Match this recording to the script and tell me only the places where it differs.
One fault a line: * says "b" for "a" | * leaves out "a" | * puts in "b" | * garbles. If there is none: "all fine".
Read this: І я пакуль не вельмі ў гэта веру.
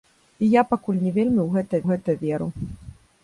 * puts in "гэта"